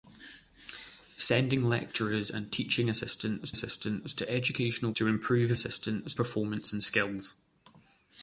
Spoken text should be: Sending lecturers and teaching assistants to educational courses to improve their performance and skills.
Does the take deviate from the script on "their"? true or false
true